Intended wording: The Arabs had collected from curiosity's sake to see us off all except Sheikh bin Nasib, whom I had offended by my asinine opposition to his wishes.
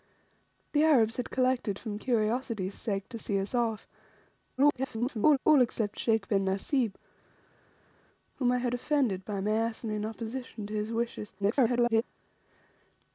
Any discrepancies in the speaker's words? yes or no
yes